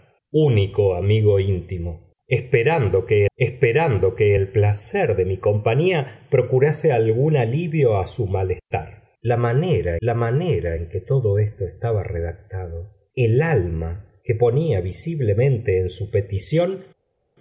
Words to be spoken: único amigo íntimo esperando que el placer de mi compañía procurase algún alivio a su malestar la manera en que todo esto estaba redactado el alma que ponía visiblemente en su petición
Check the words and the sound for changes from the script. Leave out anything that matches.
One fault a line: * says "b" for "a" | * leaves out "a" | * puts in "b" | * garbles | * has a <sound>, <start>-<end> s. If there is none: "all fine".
* puts in "esperando que"
* puts in "la manera"